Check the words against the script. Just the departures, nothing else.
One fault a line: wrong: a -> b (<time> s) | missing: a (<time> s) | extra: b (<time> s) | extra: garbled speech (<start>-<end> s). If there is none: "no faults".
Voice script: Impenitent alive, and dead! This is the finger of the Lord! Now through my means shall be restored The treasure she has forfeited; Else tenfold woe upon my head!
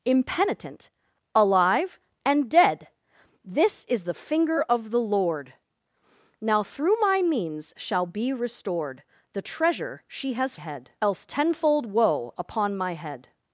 wrong: forfeited -> head (10.5 s)